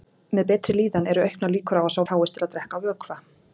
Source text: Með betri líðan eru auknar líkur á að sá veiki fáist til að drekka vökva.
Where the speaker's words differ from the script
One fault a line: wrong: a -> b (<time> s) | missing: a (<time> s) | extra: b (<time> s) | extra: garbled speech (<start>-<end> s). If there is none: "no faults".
missing: veiki (2.0 s)